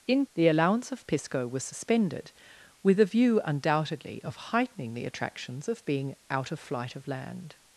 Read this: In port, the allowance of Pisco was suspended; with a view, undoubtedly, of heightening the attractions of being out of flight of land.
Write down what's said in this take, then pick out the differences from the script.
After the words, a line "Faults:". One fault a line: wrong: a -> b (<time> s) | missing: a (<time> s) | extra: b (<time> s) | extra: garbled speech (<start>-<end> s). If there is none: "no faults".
In the allowance of Pisco was suspended; with a view, undoubtedly, of heightening the attractions of being out of flight of land.
Faults:
missing: port (0.2 s)